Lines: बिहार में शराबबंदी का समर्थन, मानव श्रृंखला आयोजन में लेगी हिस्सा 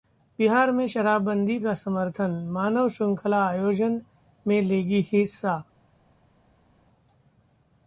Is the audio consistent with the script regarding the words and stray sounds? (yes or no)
yes